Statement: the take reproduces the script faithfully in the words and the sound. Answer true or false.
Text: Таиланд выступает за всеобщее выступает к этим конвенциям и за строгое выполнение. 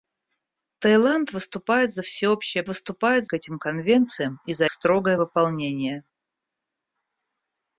true